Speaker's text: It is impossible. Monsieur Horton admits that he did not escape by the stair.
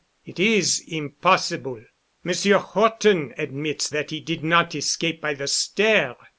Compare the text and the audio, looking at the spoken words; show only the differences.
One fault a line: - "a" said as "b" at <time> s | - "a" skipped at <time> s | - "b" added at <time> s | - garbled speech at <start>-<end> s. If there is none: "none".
none